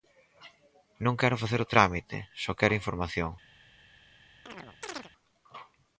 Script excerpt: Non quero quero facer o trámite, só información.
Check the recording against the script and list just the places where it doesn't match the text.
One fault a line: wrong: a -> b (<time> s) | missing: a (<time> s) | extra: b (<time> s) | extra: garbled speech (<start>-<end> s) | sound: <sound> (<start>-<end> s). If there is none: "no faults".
missing: quero (1.4 s)
extra: quero (2.6 s)
sound: chirp (4.5-5.1 s)